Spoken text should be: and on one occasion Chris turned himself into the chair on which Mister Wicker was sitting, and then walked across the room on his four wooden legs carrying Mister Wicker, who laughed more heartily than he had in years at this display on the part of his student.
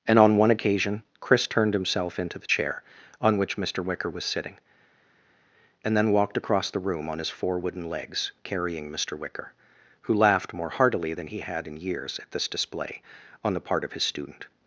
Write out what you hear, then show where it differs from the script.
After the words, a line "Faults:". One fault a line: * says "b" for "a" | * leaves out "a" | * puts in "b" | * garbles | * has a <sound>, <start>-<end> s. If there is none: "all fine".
and on one occasion Chris turned himself into the chair on which Mister Wicker was sitting, and then walked across the room on his four wooden legs carrying Mister Wicker, who laughed more heartily than he had in years at this display on the part of his student.
Faults:
all fine